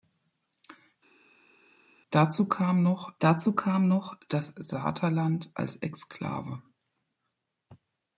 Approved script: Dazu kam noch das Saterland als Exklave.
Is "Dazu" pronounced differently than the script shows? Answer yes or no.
no